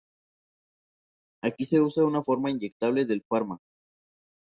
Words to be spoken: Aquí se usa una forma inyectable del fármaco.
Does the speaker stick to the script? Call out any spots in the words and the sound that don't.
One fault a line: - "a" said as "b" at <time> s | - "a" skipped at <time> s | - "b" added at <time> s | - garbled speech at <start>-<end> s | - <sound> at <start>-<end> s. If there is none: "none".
none